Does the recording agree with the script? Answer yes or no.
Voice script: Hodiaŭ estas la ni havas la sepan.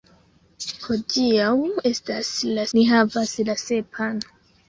yes